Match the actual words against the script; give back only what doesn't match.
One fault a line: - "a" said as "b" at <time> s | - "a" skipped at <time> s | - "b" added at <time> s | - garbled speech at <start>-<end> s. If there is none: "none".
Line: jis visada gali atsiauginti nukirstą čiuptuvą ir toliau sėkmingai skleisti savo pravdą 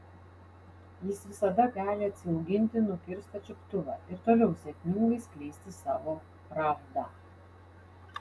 none